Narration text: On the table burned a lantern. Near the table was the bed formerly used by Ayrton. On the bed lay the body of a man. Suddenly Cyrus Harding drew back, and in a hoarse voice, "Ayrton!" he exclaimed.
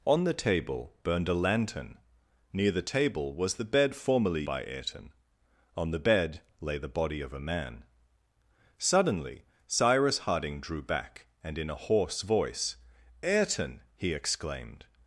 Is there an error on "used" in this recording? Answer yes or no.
yes